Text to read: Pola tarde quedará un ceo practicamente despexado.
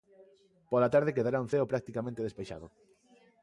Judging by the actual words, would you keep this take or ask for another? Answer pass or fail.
pass